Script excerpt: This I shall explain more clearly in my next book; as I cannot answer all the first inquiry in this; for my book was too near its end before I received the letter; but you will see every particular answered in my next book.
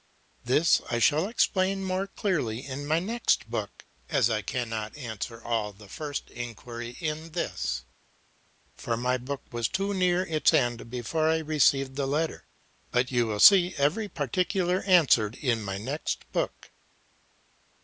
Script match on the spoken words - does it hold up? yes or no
yes